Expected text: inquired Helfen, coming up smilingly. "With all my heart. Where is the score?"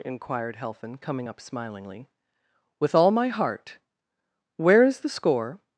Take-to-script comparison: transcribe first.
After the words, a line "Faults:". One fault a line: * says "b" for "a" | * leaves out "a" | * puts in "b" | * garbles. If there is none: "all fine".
inquired Helfen, coming up smilingly. "With all my heart. Where is the score?"
Faults:
all fine